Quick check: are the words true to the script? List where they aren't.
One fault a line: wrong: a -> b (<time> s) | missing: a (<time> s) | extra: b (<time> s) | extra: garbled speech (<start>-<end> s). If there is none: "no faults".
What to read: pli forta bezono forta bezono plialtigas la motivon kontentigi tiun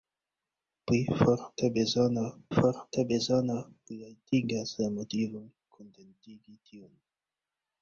no faults